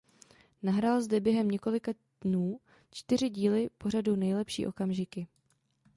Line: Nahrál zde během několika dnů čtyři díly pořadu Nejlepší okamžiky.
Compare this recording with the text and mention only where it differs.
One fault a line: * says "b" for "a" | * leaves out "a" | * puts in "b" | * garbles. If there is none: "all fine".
all fine